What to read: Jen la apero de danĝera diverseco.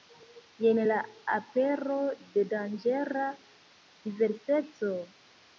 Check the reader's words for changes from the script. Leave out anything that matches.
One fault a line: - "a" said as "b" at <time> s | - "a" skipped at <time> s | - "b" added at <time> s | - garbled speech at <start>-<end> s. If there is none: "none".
none